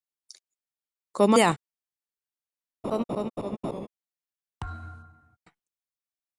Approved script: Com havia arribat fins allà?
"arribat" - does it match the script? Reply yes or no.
no